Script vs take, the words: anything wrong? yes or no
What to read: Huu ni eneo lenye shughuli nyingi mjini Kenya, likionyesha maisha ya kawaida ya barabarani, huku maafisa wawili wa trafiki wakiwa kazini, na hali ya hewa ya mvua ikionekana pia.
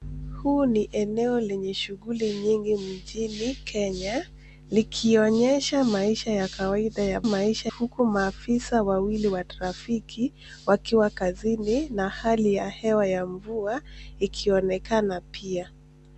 yes